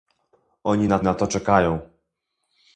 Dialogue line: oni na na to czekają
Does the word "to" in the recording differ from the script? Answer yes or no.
no